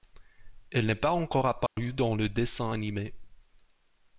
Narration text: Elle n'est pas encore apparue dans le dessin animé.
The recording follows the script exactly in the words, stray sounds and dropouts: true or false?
false